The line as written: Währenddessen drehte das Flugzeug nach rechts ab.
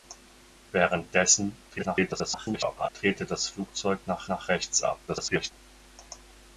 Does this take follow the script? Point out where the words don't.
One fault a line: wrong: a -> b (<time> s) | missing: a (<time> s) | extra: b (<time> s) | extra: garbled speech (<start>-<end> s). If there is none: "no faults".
extra: garbled speech (1.7-2.9 s)
extra: nach (4.3 s)
extra: garbled speech (5.1-5.5 s)